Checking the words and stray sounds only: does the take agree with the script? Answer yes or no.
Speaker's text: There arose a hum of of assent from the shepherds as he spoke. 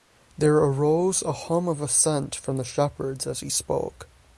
no